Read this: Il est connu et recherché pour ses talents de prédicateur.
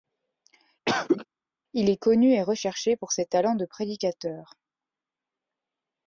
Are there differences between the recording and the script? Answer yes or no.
no